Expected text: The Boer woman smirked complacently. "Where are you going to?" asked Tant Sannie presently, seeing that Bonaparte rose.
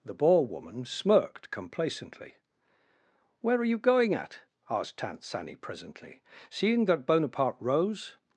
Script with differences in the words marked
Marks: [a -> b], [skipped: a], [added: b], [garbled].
The Boer woman smirked complacently. "Where are you going [to?" -> at] asked Tant Sannie presently, seeing that Bonaparte rose.